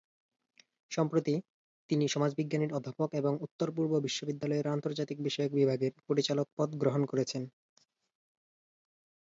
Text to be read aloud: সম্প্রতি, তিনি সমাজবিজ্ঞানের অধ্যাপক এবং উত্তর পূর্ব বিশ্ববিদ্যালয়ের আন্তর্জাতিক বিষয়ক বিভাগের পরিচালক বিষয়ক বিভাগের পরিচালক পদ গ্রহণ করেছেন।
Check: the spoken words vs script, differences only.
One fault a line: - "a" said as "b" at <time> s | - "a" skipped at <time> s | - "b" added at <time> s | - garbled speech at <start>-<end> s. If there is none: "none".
- "বিষয়ক বিভাগের পরিচালক" skipped at 6.5 s